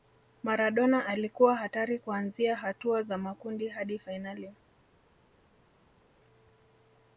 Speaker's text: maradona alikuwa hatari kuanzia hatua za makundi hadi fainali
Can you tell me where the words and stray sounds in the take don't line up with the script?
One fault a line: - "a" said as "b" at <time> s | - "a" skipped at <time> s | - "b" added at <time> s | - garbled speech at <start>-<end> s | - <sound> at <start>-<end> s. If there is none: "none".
none